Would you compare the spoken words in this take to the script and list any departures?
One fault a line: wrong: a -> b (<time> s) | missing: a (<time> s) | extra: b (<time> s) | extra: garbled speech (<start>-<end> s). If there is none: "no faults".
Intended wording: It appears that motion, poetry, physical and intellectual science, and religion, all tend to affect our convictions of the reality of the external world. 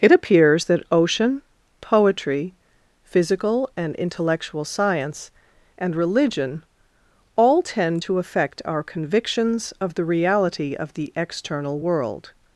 wrong: motion -> ocean (0.9 s)